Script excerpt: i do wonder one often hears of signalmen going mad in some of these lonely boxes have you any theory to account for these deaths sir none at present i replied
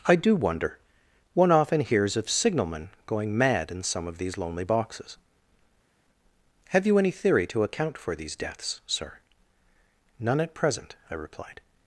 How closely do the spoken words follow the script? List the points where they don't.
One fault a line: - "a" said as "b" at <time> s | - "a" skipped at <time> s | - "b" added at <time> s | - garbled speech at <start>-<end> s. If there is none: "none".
none